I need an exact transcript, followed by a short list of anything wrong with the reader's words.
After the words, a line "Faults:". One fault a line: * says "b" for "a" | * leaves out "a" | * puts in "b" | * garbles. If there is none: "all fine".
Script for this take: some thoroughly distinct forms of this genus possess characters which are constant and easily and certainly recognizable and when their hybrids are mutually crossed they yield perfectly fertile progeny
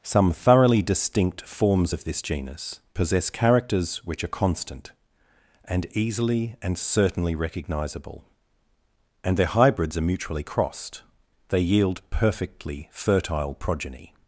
some thoroughly distinct forms of this genus possess characters which are constant and easily and certainly recognizable and their hybrids are mutually crossed they yield perfectly fertile progeny
Faults:
* leaves out "when"